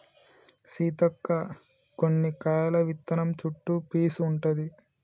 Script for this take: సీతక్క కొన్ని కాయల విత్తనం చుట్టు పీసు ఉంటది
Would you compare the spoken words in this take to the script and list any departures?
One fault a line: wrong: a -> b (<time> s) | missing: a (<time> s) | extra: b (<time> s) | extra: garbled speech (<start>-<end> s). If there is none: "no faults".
no faults